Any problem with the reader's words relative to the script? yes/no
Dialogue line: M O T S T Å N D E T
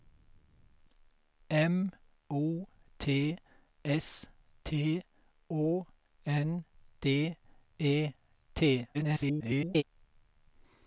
yes